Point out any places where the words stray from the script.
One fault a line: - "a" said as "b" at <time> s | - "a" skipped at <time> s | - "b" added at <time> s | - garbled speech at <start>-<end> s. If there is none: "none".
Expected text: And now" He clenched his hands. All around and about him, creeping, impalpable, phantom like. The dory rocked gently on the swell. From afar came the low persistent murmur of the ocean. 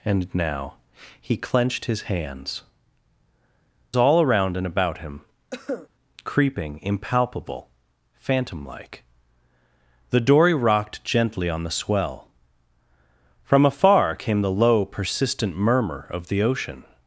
none